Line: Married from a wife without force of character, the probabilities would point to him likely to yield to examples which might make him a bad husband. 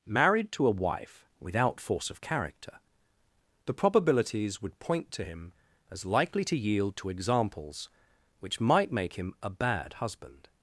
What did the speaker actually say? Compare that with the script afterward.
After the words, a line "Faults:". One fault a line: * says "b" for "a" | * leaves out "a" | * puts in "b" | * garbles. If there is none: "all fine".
Married to a wife without force of character, the probabilities would point to him as likely to yield to examples which might make him a bad husband.
Faults:
* says "to" for "from"
* puts in "as"